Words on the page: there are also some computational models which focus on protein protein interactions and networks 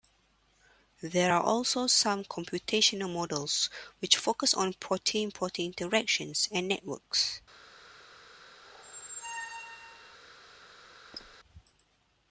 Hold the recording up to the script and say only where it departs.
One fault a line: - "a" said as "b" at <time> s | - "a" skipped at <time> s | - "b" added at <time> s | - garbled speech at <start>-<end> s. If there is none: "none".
none